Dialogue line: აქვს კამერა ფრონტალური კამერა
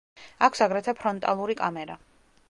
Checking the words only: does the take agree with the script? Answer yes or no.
no